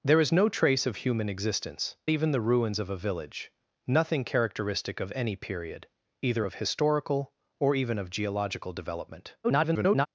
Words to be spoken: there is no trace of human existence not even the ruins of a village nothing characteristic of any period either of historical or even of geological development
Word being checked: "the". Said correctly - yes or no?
yes